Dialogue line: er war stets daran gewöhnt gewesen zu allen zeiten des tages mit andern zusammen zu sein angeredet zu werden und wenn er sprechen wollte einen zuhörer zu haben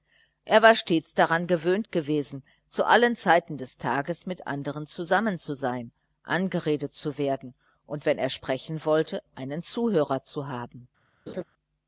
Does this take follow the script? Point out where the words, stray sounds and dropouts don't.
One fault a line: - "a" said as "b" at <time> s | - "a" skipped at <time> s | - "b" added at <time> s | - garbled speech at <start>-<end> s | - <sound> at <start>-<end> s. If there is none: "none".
- laugh at 11.3-11.4 s